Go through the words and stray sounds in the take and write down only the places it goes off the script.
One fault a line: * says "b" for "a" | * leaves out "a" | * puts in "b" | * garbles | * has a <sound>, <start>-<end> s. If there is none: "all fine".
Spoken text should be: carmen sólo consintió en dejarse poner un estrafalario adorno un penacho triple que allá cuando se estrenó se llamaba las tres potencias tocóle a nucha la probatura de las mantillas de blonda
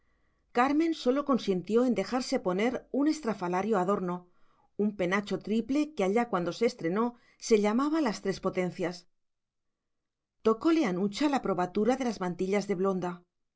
all fine